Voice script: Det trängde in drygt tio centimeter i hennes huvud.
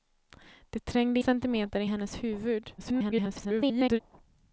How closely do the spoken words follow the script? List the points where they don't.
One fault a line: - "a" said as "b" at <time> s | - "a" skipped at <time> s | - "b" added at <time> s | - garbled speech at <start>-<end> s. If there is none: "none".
- "in drygt tio" skipped at 1.2 s
- garbled speech at 2.8-4.0 s